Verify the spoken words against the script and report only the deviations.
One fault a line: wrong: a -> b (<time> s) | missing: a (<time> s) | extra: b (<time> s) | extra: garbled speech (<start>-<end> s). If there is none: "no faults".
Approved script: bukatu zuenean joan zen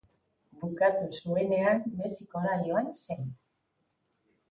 extra: mexikora (2.0 s)